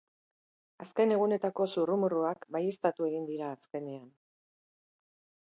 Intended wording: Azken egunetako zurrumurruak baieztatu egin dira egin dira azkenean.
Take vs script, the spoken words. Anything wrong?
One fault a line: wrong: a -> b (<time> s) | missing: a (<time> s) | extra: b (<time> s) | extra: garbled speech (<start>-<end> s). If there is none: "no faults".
missing: egin dira (3.5 s)